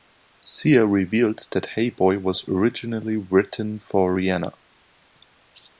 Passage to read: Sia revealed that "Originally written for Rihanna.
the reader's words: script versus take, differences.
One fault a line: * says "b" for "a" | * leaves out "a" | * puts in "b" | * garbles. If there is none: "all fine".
* puts in "Hey Boy was"